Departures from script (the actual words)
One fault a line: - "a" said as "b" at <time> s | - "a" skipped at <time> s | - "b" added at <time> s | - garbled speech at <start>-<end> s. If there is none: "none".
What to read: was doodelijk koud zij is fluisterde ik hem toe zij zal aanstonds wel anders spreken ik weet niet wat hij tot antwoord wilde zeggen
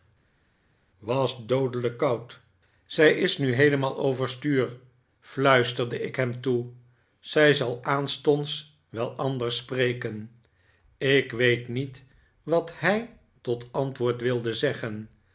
- "nu heelemaal overstuur" added at 3.4 s